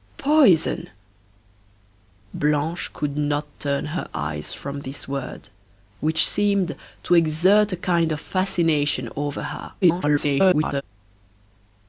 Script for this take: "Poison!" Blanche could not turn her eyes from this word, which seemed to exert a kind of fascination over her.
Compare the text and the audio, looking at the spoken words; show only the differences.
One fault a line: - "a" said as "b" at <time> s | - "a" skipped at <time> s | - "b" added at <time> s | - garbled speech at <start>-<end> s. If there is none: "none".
- garbled speech at 9.8-10.8 s